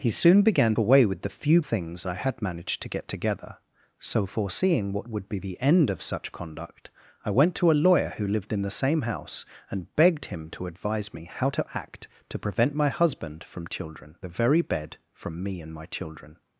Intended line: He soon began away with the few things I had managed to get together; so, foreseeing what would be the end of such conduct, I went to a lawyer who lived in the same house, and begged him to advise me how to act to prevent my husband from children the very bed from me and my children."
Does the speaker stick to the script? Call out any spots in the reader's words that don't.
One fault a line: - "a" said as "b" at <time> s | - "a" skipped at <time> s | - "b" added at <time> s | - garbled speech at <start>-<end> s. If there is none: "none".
none